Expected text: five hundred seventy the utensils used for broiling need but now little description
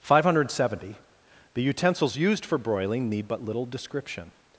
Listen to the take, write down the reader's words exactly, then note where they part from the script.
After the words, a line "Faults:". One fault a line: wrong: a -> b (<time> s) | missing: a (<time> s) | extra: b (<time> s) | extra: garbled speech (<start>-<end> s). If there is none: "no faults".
five hundred seventy the utensils used for broiling need but little description
Faults:
missing: now (3.4 s)